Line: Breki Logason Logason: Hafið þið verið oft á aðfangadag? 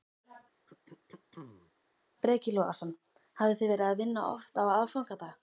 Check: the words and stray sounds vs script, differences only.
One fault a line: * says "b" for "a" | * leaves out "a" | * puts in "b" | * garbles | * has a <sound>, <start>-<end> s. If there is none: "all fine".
* has a throat clearing, 0.7-1.7 s
* leaves out "Logason"
* puts in "að vinna"